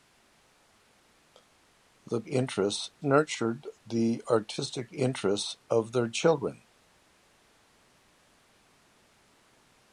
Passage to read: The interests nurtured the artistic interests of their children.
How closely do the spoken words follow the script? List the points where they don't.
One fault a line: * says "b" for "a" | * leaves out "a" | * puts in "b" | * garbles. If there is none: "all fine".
all fine